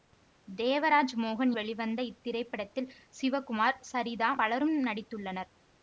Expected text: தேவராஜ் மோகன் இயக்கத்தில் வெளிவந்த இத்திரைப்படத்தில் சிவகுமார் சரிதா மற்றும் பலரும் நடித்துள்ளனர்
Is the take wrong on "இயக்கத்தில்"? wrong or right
wrong